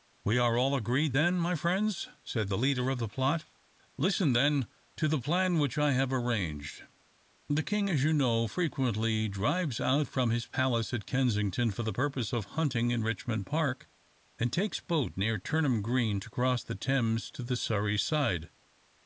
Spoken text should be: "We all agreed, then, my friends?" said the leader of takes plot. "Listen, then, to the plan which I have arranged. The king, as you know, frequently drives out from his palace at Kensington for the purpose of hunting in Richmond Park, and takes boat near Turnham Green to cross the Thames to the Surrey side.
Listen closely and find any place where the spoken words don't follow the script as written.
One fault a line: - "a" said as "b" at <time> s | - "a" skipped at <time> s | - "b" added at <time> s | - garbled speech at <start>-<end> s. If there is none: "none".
- "are" added at 0.4 s
- "takes" said as "the" at 3.0 s